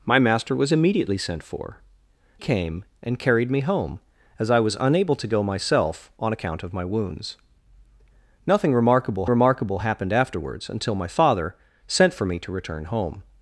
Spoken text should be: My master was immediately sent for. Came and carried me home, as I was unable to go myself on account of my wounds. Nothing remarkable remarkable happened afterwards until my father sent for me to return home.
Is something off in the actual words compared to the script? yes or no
no